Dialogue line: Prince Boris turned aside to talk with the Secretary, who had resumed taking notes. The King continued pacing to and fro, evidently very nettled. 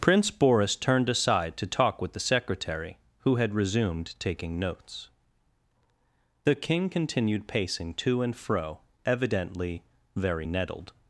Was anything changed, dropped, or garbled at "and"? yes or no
no